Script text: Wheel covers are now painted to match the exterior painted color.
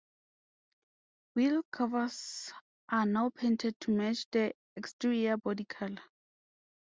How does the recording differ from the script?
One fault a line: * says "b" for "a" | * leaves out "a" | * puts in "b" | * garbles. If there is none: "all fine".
* says "body" for "painted"